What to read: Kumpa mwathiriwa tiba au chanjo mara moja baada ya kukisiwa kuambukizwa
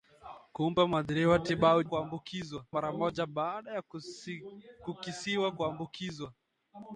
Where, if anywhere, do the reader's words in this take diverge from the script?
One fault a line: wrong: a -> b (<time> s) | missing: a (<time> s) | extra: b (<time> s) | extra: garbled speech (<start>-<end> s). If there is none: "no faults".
wrong: chanjo -> kuambukizwa (1.8 s)